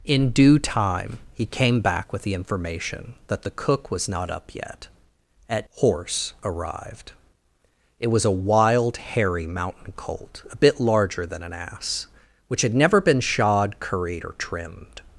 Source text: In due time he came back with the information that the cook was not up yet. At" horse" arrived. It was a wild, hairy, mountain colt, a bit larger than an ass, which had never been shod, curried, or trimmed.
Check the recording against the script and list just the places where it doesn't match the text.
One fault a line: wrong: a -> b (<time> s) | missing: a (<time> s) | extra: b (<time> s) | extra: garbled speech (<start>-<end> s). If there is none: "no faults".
no faults